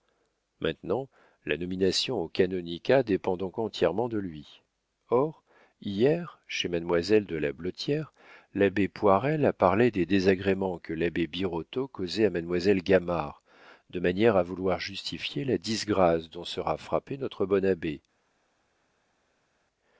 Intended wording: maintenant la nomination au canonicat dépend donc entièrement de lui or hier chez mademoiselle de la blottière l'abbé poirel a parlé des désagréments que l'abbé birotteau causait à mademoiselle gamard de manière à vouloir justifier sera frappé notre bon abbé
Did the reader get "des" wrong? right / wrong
right